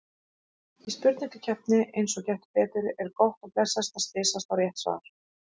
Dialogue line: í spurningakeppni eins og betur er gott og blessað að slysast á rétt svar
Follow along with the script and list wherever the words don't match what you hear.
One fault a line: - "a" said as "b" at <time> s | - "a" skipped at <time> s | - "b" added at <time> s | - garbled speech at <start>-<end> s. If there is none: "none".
- "gettu" added at 2.3 s